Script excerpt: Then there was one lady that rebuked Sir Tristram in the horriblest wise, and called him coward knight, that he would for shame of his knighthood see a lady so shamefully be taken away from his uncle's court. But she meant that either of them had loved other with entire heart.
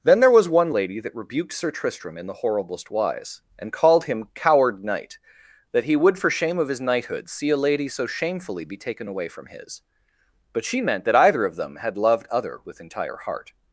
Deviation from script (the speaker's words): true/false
true